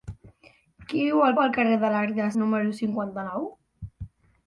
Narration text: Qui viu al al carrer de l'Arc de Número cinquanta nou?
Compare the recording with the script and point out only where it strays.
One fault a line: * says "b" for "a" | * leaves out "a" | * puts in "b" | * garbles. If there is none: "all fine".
all fine